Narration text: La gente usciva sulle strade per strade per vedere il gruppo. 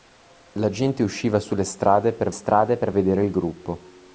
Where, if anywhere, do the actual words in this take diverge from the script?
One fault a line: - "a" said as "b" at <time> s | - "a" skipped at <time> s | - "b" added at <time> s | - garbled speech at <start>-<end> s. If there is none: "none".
none